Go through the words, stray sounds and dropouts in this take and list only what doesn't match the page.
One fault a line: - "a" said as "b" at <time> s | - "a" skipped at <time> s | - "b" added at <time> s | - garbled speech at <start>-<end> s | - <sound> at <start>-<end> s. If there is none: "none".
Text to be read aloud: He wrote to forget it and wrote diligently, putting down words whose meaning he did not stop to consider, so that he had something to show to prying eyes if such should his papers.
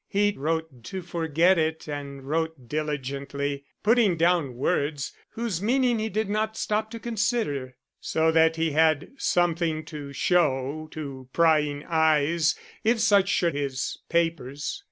none